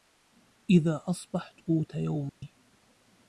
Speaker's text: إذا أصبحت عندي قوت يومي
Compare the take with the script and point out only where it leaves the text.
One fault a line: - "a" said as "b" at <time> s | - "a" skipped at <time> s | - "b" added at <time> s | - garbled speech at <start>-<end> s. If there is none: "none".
- "عندي" skipped at 1.6 s